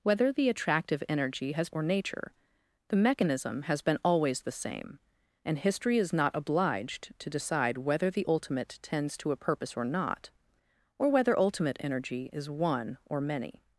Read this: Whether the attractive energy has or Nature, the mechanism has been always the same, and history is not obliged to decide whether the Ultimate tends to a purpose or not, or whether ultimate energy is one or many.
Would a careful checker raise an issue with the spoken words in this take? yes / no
no